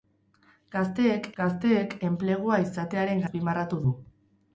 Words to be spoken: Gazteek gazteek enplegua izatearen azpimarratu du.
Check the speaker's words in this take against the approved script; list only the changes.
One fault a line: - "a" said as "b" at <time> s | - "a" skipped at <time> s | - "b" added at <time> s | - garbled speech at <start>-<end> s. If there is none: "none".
none